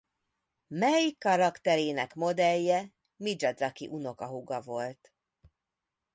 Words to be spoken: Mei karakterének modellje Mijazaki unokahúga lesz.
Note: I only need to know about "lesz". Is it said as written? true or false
false